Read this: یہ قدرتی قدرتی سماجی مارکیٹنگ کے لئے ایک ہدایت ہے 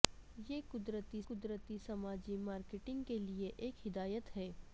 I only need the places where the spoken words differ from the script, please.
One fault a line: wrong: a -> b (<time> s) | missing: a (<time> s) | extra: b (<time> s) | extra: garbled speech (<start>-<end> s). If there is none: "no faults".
no faults